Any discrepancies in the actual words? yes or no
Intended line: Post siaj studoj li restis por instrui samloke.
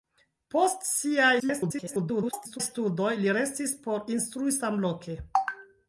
yes